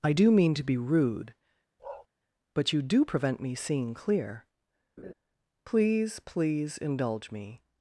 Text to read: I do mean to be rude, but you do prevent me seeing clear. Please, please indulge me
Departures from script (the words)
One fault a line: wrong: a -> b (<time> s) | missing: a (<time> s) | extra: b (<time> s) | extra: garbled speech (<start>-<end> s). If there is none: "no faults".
no faults